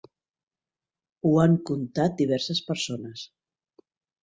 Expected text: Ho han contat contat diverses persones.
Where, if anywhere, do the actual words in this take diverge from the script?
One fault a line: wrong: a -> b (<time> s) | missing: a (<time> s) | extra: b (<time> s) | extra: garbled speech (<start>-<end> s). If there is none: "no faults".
missing: contat (2.2 s)